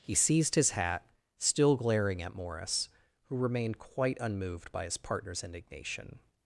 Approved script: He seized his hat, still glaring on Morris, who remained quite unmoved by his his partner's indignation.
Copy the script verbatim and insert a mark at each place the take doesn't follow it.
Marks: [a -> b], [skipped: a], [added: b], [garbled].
He seized his hat, still glaring [on -> at] Morris, who remained quite unmoved by his [skipped: his] partner's indignation.